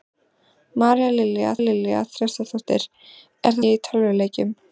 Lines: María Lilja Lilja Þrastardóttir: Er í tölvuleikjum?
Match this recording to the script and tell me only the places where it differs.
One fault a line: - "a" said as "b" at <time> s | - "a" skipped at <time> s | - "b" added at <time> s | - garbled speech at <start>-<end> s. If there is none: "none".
none